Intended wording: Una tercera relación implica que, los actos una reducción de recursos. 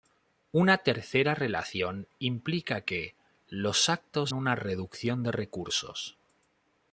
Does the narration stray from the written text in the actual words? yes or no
no